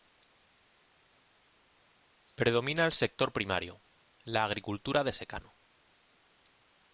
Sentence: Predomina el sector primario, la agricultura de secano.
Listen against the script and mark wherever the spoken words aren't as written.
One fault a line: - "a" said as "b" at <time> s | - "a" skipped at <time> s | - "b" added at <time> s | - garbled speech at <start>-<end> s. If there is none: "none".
none